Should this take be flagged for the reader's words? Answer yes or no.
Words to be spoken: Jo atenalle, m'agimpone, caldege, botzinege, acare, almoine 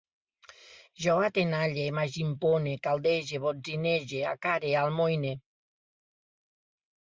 no